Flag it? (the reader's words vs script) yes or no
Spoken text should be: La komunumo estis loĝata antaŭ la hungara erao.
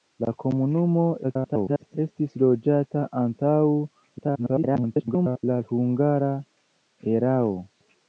yes